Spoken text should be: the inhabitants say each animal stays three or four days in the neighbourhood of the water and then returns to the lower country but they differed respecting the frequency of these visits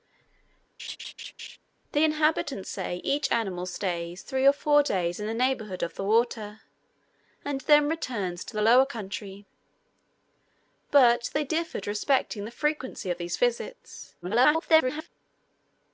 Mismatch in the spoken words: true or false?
true